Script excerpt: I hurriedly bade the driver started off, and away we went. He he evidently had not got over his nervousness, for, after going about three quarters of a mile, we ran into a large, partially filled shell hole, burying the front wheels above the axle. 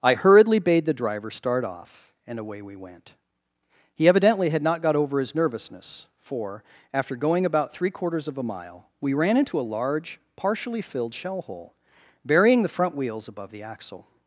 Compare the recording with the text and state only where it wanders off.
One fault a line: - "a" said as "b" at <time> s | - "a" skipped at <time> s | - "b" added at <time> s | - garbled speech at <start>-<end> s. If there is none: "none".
- "started" said as "start" at 1.3 s
- "he" skipped at 4.1 s